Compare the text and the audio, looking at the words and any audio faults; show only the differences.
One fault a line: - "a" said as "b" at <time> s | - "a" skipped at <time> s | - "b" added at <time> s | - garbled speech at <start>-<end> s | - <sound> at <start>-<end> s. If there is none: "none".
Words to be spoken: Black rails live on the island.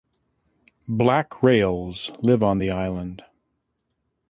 none